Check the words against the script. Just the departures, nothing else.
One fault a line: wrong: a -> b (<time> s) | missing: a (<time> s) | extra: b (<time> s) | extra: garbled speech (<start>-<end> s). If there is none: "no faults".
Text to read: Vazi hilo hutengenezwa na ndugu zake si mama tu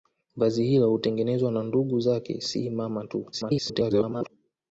extra: garbled speech (3.3-4.3 s)